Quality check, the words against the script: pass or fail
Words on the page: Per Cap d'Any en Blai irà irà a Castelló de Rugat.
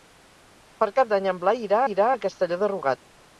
pass